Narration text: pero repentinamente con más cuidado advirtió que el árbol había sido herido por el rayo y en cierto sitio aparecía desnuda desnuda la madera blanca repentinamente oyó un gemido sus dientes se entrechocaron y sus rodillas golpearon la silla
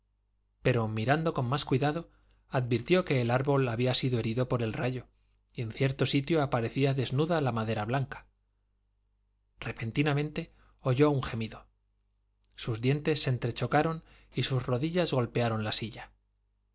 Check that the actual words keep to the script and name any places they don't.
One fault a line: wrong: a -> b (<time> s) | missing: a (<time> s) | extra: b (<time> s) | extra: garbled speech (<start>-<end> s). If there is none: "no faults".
wrong: repentinamente -> mirando (0.9 s)
missing: desnuda (7.4 s)